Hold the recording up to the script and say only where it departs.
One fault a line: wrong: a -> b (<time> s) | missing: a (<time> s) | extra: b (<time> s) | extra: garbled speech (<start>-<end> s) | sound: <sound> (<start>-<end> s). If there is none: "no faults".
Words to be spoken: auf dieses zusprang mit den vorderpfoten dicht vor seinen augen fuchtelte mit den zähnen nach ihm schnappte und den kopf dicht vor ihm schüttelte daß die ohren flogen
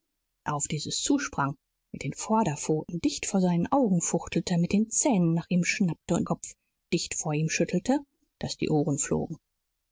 missing: den (6.3 s)